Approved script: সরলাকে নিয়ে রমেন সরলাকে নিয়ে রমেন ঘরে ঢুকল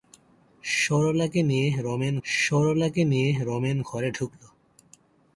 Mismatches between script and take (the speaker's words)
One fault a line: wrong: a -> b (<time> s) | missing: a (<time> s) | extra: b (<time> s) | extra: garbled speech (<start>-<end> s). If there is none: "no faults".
no faults